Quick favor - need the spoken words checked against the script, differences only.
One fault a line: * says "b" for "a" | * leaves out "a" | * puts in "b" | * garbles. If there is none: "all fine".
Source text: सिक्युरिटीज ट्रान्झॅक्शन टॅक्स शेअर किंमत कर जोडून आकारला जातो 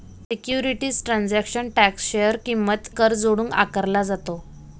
all fine